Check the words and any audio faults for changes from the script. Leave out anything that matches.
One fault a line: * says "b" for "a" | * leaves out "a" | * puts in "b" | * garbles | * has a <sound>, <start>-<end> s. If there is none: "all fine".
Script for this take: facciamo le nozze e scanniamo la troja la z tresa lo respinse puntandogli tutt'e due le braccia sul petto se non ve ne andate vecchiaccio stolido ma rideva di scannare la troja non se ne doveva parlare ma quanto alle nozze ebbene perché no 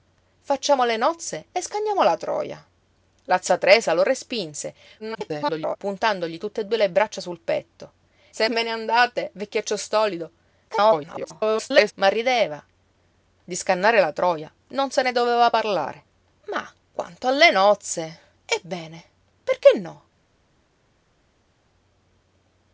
* garbles
* leaves out "non"
* garbles